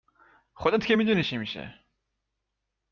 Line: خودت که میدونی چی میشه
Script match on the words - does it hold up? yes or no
yes